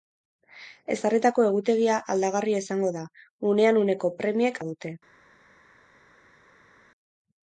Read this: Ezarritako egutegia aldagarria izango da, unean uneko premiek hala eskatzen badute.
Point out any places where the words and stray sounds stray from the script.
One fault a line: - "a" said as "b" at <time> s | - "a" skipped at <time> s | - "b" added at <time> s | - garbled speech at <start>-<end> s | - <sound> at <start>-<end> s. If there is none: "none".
- "hala eskatzen" skipped at 4.6 s